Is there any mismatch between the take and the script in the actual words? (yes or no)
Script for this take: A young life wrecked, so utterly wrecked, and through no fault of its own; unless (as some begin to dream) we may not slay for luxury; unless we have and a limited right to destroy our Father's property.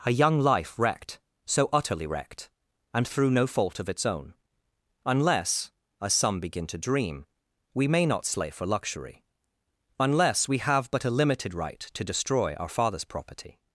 yes